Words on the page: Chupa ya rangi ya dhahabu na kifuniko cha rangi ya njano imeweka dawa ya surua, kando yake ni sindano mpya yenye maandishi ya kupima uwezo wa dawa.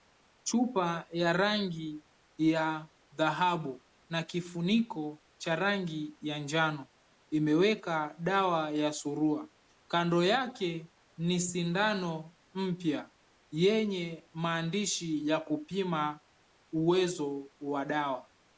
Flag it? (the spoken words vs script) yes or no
no